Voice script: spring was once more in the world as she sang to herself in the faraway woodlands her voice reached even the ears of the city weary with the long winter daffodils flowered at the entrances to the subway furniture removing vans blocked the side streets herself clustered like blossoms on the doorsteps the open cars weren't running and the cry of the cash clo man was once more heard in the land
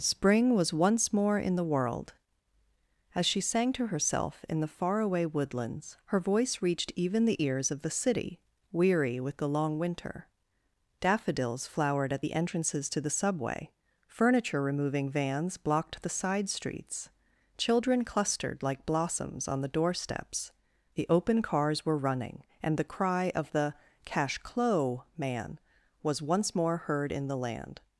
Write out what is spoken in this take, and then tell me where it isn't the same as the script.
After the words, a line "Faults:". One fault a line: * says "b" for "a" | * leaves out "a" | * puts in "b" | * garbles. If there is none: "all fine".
spring was once more in the world as she sang to herself in the faraway woodlands her voice reached even the ears of the city weary with the long winter daffodils flowered at the entrances to the subway furniture removing vans blocked the side streets children clustered like blossoms on the doorsteps the open cars were running and the cry of the cash clo man was once more heard in the land
Faults:
* says "children" for "herself"
* says "were" for "weren't"